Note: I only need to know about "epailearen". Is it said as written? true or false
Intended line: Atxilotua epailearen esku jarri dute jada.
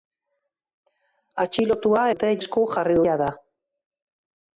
false